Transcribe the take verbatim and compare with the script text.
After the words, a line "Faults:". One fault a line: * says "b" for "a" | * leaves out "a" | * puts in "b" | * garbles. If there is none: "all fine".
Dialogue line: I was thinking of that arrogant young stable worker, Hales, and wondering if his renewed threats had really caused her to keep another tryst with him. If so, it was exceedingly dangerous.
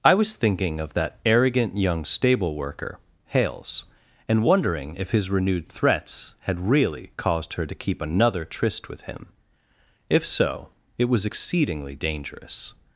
I was thinking of that arrogant young stable worker, Hales, and wondering if his renewed threats had really caused her to keep another tryst with him. If so, it was exceedingly dangerous.
Faults:
all fine